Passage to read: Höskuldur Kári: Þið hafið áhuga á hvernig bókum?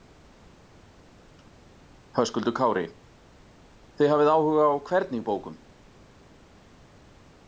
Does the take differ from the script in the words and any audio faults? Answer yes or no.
no